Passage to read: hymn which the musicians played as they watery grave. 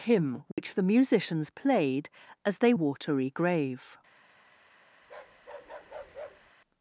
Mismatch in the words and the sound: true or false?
true